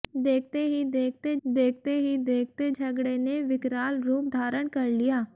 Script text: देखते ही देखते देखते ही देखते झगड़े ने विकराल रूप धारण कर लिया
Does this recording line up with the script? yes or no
yes